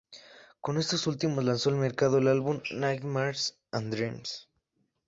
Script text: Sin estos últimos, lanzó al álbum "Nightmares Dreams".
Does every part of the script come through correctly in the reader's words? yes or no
no